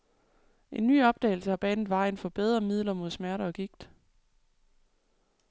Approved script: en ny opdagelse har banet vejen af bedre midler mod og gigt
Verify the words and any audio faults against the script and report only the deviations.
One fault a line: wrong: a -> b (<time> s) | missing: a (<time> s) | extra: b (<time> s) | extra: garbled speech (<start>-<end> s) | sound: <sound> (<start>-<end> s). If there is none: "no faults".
wrong: af -> for (2.2 s)
extra: smerter (3.1 s)